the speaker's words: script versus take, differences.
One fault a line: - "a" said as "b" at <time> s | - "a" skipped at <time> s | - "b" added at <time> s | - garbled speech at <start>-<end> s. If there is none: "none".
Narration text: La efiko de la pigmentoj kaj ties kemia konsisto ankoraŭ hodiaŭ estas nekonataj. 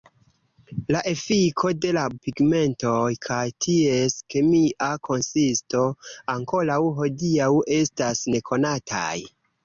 none